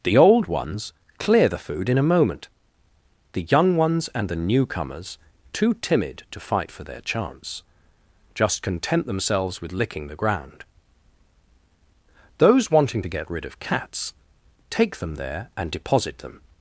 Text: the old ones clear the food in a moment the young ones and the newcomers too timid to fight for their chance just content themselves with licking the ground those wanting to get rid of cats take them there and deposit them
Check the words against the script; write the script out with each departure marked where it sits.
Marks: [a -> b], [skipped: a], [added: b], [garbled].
the old ones clear the food in a moment the young ones and the newcomers too timid to fight for their chance just content themselves with licking the ground those wanting to get rid of cats take them there and deposit them